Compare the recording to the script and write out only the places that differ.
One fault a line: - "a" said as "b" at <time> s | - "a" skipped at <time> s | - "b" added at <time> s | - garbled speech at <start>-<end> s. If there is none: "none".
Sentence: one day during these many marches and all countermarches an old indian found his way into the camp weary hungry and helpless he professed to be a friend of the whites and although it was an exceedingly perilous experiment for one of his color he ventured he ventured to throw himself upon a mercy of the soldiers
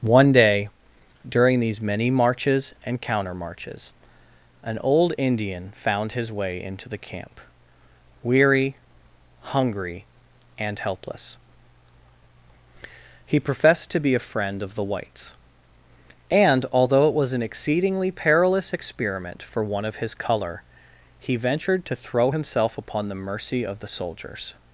- "all" skipped at 3.0 s
- "he ventured" skipped at 21.8 s
- "a" said as "the" at 23.1 s